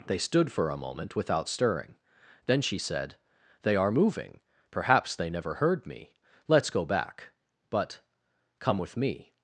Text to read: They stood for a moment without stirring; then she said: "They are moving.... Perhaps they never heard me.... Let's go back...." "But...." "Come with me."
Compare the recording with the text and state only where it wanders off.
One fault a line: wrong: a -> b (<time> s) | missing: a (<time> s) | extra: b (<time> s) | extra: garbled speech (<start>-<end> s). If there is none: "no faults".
no faults